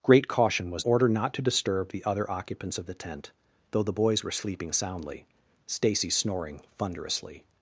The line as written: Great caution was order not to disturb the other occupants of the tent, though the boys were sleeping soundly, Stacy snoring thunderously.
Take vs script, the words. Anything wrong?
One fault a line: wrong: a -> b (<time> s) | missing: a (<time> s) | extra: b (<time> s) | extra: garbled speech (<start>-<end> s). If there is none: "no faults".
no faults